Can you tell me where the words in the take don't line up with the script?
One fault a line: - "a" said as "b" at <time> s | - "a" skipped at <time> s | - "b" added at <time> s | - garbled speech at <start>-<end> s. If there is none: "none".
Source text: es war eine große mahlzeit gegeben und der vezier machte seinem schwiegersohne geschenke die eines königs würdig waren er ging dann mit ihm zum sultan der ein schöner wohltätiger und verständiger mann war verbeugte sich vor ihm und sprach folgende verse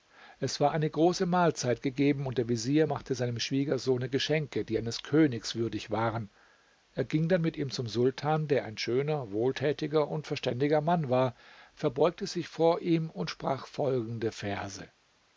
none